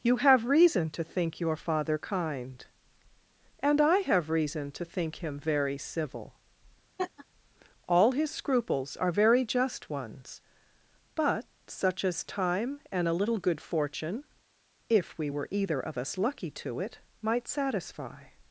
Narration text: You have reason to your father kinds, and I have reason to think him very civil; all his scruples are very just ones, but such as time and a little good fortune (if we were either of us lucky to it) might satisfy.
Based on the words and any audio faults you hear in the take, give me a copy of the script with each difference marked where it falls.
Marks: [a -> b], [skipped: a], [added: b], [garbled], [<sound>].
You have reason to [added: think] your father [kinds, -> kind] and I have reason to think him very civil; [laugh] all his scruples are very just ones, but such as time and a little good fortune (if we were either of us lucky to it) might satisfy.